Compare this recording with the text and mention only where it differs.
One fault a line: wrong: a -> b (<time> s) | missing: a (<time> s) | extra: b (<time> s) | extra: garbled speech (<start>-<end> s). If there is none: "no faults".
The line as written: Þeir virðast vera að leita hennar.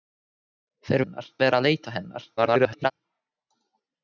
wrong: virðast -> hennar (1.0 s)
extra: garbled speech (2.4-2.9 s)